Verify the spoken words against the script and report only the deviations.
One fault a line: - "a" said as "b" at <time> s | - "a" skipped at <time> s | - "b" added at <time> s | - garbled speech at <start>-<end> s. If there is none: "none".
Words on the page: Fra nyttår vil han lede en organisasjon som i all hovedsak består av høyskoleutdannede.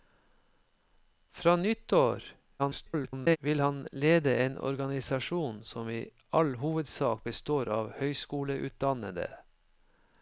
- garbled speech at 2.6-3.4 s